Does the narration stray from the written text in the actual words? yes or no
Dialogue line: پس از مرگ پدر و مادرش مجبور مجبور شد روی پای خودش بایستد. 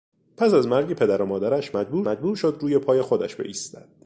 no